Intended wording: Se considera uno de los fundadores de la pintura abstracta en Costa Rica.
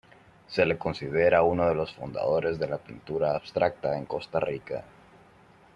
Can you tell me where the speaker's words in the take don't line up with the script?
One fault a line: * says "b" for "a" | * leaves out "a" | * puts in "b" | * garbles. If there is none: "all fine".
* puts in "le"